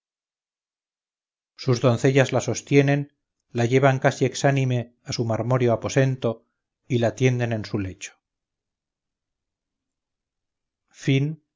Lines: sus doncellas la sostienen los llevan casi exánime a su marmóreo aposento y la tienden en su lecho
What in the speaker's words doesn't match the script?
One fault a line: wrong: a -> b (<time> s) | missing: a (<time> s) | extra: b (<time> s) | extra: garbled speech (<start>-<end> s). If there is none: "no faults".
wrong: los -> la (3.5 s)